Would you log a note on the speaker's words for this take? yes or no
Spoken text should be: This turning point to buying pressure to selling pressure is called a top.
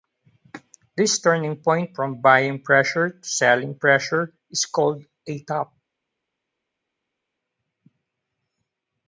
yes